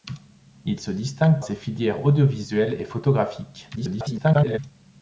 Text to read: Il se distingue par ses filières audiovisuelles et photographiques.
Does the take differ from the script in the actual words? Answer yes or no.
yes